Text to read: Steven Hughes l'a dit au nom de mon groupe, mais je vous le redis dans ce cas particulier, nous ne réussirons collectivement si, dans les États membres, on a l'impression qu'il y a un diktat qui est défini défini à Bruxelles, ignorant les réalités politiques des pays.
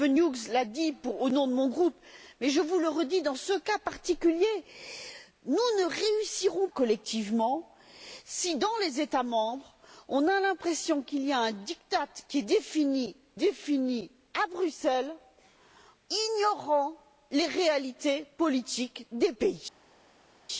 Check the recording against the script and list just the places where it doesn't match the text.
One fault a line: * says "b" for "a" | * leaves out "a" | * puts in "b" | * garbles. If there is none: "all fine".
all fine